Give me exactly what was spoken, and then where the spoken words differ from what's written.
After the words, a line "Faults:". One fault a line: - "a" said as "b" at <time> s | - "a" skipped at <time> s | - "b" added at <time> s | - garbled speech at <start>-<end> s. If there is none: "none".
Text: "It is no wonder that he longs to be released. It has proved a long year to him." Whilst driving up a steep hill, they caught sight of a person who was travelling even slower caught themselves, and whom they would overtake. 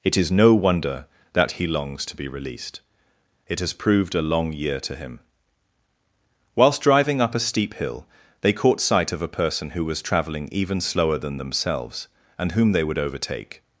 "It is no wonder that he longs to be released. It has proved a long year to him." Whilst driving up a steep hill, they caught sight of a person who was travelling even slower than themselves, and whom they would overtake.
Faults:
- "caught" said as "than" at 11.2 s